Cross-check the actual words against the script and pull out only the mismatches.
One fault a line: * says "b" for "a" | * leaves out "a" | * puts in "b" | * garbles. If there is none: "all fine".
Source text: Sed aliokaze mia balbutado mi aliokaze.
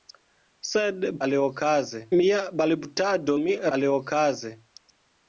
all fine